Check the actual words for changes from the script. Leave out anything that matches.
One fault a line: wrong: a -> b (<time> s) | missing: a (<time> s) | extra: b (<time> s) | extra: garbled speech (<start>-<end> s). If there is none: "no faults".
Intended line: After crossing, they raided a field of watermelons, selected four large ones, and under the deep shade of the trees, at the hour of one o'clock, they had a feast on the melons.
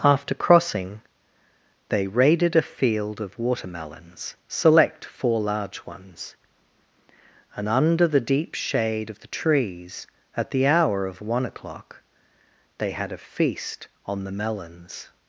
wrong: selected -> select (4.5 s)